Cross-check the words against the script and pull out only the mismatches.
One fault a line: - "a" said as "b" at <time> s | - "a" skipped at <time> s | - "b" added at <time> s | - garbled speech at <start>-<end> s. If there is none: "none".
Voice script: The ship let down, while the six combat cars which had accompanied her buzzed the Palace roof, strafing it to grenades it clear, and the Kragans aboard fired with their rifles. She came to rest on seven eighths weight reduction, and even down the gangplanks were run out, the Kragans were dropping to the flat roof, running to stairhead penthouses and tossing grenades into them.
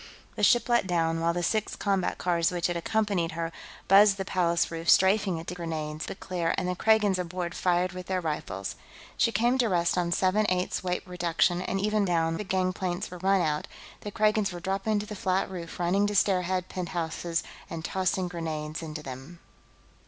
none